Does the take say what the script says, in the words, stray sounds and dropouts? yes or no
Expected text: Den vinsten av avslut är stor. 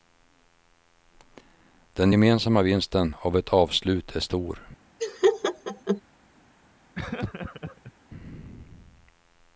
no